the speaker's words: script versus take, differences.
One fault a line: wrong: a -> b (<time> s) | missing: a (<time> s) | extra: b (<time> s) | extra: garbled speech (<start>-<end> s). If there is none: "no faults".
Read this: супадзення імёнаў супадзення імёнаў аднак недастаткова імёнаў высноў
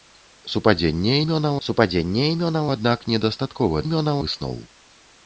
no faults